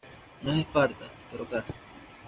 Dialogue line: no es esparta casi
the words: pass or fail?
fail